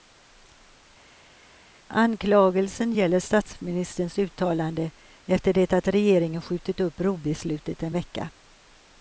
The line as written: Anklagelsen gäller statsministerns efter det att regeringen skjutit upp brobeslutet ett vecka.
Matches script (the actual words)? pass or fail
fail